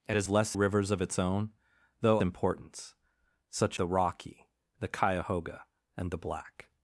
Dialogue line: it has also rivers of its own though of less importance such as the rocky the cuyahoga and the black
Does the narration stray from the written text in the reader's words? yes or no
yes